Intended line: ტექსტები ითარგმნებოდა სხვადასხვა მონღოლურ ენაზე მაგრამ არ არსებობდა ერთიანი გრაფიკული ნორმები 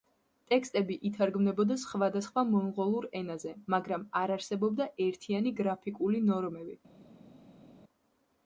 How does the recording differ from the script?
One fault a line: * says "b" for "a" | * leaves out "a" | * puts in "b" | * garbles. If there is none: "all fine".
all fine